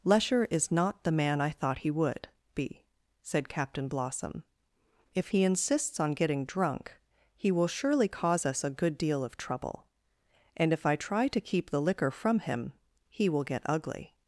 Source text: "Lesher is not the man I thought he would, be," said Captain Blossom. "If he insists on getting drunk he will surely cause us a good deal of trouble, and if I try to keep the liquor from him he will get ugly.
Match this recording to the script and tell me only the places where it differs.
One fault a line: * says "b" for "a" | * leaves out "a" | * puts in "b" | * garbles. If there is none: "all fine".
all fine